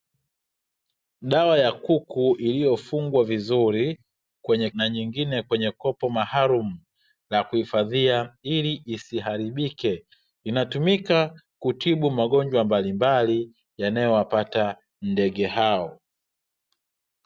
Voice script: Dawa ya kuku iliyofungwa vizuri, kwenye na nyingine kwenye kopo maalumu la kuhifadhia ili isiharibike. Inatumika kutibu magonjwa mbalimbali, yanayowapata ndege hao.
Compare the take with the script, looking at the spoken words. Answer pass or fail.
pass